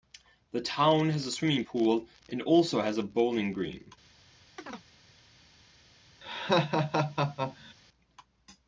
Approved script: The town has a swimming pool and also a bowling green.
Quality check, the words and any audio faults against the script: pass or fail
fail